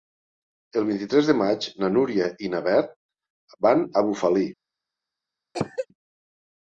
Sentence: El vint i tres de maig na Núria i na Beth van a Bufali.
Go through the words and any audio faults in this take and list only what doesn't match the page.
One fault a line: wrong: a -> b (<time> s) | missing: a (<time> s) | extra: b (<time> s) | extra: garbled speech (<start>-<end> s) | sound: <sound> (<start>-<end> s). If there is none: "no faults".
sound: cough (5.5-5.9 s)